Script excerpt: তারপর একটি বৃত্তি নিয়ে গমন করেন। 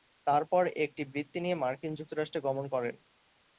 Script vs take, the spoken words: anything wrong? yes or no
yes